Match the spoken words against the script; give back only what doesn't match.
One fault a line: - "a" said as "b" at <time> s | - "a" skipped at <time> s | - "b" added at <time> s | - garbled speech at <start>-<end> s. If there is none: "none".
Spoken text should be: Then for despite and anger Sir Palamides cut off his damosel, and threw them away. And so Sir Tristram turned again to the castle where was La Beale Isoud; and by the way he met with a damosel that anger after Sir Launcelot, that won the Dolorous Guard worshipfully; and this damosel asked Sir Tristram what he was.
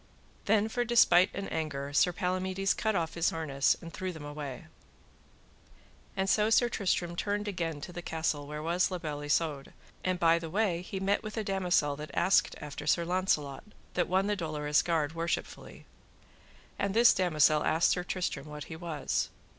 - "damosel" said as "harness" at 3.3 s
- "anger" said as "asked" at 12.1 s